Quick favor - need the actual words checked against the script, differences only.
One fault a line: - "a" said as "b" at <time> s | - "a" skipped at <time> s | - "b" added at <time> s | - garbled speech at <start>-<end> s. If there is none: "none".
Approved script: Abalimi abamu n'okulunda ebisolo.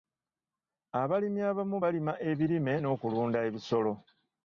- "balima ebirime" added at 1.8 s